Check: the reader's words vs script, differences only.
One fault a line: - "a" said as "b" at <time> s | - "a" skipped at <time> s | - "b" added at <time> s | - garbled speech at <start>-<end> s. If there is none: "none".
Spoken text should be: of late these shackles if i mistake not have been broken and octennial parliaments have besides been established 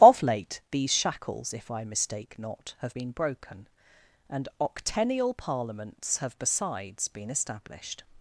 none